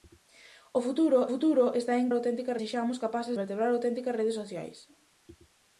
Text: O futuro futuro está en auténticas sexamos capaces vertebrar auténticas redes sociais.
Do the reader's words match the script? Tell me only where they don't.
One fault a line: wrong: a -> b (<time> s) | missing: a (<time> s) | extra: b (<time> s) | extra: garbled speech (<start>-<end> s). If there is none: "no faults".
no faults